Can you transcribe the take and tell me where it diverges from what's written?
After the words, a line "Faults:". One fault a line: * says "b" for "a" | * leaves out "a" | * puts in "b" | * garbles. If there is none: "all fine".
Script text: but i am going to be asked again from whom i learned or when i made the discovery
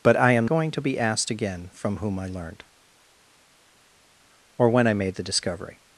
but i am going to be asked again from whom i learned or when i made the discovery
Faults:
all fine